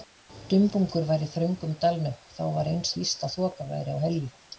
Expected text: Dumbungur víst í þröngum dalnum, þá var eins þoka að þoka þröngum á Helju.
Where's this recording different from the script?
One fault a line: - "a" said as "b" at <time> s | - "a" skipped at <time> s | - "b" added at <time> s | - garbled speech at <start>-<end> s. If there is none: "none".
- "víst" said as "var" at 1.1 s
- "þoka" said as "víst" at 3.0 s
- "þröngum" said as "væri" at 3.7 s